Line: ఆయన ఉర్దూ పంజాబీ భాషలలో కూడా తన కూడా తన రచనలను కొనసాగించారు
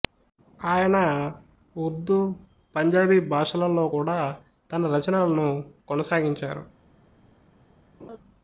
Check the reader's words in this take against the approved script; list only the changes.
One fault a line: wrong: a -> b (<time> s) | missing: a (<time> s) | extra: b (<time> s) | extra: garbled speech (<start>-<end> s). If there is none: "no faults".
missing: కూడా తన (4.9 s)